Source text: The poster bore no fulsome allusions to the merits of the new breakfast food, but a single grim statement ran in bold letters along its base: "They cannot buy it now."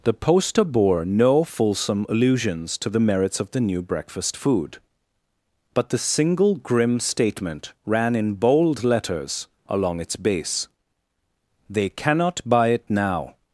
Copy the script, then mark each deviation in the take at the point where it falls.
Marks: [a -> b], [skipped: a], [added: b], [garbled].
The poster bore no fulsome allusions to the merits of the new breakfast food, but [a -> the] single grim statement ran in bold letters along its base: "They cannot buy it now."